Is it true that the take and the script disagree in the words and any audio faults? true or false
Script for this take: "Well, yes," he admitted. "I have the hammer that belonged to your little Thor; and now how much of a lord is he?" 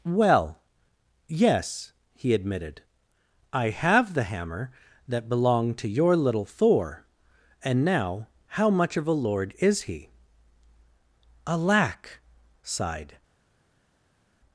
true